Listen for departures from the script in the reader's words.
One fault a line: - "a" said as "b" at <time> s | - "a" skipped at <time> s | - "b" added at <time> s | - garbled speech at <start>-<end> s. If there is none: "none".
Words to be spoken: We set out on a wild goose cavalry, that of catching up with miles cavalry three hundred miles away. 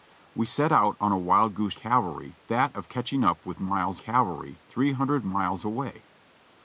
none